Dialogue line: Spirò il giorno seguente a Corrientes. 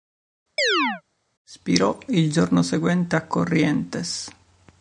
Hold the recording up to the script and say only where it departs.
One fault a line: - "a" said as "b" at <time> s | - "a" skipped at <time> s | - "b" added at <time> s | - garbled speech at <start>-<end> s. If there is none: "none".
none